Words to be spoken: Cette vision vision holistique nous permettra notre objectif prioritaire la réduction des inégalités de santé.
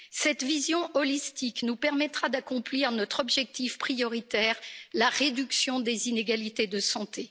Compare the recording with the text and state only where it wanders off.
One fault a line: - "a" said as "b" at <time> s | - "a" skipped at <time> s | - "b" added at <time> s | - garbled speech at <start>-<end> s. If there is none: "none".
- "vision" skipped at 0.9 s
- "d'accomplir" added at 2.3 s